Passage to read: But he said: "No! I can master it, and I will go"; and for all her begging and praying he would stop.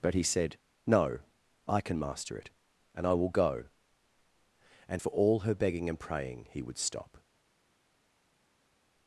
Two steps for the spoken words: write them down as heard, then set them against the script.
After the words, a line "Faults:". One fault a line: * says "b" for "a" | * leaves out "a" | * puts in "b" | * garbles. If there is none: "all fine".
But he said: "No! I can master it, and I will go"; and for all her begging and praying he would stop.
Faults:
all fine